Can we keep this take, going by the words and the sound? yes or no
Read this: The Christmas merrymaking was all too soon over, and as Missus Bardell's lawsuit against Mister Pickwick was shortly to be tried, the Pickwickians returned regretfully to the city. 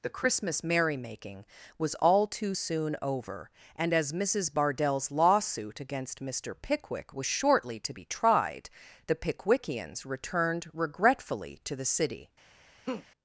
no